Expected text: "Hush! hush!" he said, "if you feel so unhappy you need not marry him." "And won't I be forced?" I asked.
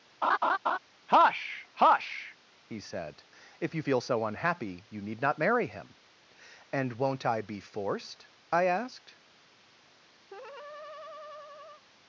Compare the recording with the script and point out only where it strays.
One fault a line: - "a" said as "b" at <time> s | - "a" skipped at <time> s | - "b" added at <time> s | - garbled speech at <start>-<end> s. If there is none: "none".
none